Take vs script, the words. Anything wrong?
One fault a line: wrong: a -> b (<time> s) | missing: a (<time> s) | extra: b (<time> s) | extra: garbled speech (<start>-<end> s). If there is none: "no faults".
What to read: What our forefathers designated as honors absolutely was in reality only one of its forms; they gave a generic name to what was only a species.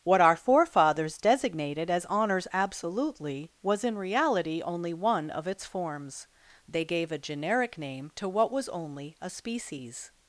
no faults